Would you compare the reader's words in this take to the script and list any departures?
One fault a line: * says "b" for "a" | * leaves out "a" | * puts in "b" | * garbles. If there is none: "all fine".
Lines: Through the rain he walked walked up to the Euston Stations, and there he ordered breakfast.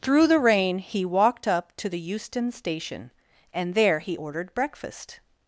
* leaves out "walked"
* says "Station" for "Stations"